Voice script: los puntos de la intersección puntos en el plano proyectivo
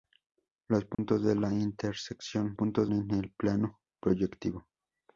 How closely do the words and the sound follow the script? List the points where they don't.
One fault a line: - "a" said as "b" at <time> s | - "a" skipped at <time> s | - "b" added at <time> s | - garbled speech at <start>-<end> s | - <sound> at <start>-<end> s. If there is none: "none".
- dropout at 0.9-1.0 s